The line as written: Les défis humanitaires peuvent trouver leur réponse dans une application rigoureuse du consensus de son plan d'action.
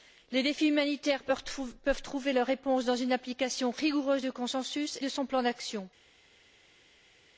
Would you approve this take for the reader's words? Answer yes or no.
yes